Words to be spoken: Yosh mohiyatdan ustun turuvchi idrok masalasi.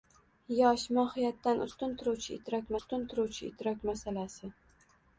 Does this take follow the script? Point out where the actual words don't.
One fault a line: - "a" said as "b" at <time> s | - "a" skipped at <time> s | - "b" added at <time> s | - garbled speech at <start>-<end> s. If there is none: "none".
- "ustun turuvchi idrok" added at 2.8 s